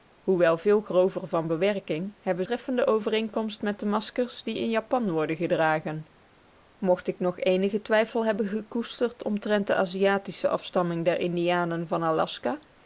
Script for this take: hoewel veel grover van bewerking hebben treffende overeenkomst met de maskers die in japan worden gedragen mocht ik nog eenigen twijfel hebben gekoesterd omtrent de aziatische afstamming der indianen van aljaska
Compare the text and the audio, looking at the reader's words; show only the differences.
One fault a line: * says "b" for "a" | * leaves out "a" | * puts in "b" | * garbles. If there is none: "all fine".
all fine